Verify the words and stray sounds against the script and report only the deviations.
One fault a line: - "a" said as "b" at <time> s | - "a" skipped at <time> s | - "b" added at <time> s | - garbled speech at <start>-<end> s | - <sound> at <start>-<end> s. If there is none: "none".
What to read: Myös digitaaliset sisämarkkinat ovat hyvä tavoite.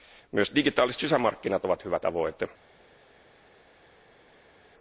none